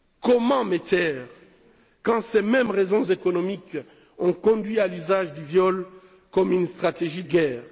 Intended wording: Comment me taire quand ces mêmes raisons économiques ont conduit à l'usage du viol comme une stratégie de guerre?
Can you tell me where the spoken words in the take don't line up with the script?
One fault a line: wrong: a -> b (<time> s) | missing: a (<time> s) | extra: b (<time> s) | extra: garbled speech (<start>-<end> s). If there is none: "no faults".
missing: de (7.2 s)